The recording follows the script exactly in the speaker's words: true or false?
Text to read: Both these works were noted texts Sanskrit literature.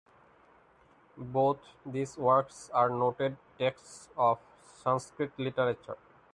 false